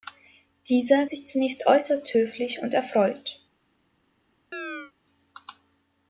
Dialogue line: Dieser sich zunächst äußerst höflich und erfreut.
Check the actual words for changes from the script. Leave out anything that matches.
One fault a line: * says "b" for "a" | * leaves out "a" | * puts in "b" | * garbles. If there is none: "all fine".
all fine